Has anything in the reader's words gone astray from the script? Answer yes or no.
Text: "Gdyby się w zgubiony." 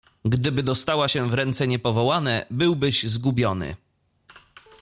yes